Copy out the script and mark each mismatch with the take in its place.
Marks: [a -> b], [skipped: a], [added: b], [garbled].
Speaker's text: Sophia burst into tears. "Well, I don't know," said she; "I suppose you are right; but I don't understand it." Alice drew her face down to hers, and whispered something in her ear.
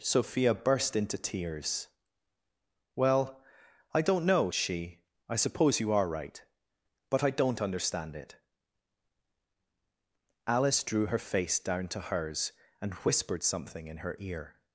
Sophia burst into tears. "Well, I don't know," [skipped: said] she; "I suppose you are right; but I don't understand it." Alice drew her face down to hers, and whispered something in her ear.